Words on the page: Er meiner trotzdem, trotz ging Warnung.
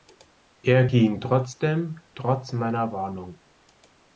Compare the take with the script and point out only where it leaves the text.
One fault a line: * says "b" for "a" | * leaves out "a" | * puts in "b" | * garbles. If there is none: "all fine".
* says "ging" for "meiner"
* says "meiner" for "ging"